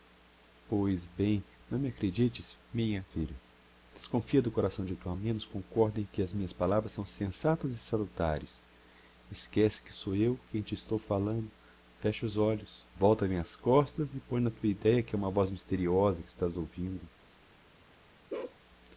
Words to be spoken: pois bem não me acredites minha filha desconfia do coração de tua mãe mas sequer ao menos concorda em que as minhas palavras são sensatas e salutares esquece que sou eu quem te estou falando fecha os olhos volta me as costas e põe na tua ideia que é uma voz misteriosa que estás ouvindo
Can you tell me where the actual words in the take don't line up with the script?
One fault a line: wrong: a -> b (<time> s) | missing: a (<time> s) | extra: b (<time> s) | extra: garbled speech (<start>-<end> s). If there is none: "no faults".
missing: mãe mas sequer (5.1 s)